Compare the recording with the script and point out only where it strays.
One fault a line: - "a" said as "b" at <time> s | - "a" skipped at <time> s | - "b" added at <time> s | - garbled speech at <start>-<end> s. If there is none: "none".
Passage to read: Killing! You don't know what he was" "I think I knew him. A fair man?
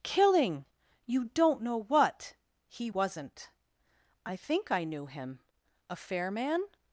- "was" said as "wasn't" at 2.9 s